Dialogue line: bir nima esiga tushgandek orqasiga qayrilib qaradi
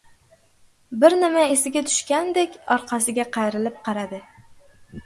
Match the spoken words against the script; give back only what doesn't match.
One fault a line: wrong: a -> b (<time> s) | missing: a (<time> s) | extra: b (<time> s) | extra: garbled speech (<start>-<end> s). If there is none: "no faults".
no faults